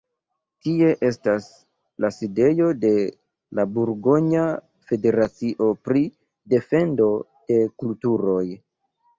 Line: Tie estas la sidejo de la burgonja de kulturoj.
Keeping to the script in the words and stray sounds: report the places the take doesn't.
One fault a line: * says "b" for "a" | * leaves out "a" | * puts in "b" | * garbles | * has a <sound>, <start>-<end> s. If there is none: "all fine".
* puts in "federacio pri defendo"